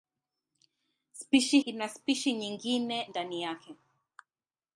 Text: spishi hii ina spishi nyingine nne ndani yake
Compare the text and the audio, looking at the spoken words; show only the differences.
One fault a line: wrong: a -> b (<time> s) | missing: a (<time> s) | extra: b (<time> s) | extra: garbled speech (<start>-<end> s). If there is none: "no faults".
missing: hii (1.6 s)
missing: nne (3.1 s)